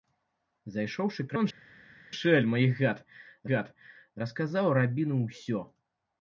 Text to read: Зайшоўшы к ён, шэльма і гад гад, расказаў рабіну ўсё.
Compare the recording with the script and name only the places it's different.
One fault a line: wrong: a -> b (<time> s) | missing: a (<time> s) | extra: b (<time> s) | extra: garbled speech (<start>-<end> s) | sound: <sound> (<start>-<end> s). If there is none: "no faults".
no faults